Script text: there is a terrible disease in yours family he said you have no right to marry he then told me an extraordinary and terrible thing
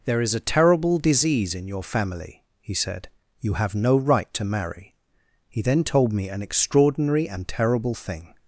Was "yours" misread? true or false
true